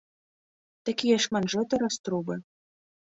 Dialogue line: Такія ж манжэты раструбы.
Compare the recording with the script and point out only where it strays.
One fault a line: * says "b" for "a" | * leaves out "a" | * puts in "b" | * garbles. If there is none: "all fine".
all fine